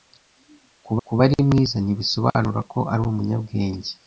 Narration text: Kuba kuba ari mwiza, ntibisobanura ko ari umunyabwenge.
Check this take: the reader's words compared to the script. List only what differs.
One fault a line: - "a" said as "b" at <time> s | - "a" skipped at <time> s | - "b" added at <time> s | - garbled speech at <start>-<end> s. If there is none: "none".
none